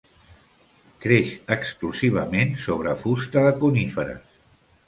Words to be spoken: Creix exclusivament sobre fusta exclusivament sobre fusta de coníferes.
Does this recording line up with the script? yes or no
no